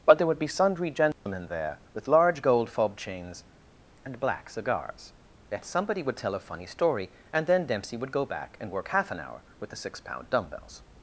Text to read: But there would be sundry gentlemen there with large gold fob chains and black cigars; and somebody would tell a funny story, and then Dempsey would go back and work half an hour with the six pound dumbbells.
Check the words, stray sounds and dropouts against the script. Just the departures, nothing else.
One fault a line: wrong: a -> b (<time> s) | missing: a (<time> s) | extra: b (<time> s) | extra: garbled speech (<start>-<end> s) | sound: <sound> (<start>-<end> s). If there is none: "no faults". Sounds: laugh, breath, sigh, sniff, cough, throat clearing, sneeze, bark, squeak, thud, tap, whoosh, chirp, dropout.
sound: dropout (1.1-1.3 s)
wrong: and -> yet (5.5 s)